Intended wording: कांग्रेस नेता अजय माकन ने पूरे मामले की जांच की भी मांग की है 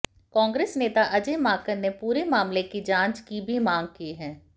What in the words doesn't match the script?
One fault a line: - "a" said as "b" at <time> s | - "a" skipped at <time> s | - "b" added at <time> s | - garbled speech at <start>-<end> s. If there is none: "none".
none